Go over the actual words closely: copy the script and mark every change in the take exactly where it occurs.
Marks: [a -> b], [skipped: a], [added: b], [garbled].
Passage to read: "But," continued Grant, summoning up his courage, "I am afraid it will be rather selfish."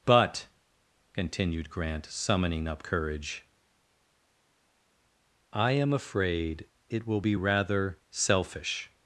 "But," continued Grant, summoning up [skipped: his] courage, "I am afraid it will be rather selfish."